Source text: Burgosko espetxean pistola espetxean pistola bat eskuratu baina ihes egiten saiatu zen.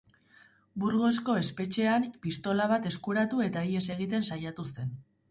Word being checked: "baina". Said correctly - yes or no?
no